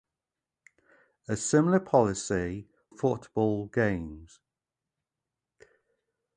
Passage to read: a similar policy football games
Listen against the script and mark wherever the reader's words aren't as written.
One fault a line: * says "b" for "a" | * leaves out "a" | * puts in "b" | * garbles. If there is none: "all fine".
all fine